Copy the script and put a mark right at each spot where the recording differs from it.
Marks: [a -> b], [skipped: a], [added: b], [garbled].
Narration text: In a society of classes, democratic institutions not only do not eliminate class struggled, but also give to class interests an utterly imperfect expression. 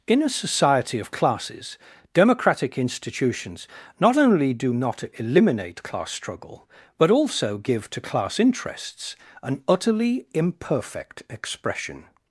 In a society of classes, democratic institutions not only do not eliminate class [struggled, -> struggle] but also give to class interests an utterly imperfect expression.